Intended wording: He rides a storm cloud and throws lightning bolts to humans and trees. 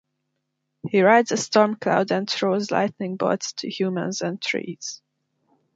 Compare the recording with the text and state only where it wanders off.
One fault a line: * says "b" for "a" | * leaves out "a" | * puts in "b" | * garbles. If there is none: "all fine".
all fine